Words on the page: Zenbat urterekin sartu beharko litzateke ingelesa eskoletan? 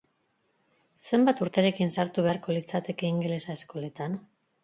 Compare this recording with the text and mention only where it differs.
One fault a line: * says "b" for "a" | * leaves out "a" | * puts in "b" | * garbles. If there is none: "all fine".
all fine